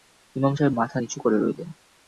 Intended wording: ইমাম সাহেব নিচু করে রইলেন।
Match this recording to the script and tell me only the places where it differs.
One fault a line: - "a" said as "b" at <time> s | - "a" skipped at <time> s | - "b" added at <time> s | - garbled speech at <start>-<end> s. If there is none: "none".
- "মাথা" added at 0.7 s